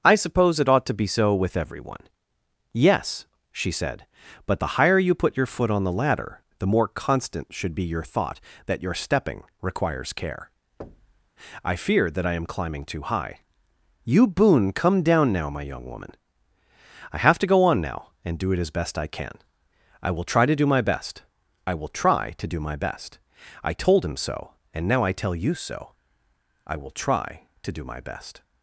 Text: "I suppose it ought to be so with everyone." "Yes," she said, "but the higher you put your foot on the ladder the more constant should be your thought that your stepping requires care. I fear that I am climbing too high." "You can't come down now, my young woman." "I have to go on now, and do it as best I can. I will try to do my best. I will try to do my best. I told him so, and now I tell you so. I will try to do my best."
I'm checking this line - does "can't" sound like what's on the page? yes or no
no